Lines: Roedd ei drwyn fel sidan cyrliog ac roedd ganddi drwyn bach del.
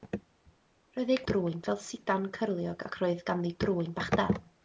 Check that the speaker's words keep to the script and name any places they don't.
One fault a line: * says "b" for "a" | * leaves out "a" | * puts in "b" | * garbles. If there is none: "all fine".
all fine